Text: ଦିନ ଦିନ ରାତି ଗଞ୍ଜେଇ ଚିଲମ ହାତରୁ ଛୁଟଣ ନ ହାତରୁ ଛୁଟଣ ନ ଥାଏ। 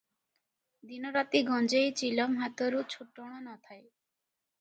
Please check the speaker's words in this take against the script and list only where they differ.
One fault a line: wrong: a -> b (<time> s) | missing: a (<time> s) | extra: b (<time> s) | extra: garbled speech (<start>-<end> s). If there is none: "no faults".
missing: ଦିନ (1.1 s)
missing: ହାତରୁ ଛୁଟଣ ନ (3.5 s)